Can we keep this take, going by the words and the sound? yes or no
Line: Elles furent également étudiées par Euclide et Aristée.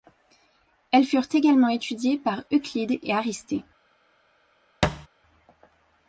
no